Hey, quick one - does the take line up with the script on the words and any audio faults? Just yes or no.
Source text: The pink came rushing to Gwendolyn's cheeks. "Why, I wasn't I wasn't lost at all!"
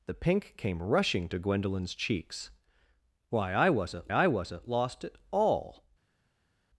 yes